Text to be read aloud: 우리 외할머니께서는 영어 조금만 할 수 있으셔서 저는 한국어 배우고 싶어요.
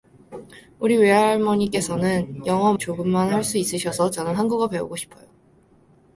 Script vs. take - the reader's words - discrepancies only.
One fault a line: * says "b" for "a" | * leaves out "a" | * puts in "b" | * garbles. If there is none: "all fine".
all fine